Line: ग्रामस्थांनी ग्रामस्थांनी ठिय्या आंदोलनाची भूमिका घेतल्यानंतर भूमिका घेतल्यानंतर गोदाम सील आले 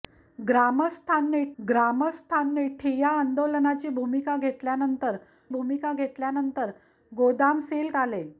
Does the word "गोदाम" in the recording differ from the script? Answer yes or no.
no